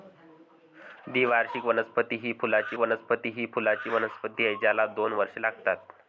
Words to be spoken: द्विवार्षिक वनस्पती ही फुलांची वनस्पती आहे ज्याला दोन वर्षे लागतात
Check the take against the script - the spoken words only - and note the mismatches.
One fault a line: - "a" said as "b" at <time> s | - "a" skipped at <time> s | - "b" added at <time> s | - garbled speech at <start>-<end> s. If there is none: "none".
- "ही फुलांची वनस्पती" added at 3.3 s